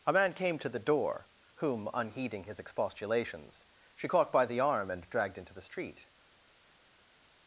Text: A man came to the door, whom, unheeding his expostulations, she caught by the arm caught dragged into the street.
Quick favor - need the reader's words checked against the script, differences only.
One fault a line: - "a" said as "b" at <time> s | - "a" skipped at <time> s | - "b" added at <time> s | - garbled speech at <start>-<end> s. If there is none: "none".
- "caught" said as "and" at 4.9 s